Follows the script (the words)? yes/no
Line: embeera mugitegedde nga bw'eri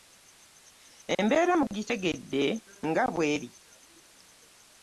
yes